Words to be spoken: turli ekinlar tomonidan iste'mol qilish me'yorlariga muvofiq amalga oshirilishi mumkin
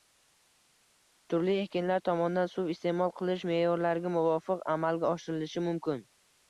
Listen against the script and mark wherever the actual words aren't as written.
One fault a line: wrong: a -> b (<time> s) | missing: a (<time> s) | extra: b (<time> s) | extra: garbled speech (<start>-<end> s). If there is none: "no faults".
extra: suv (2.5 s)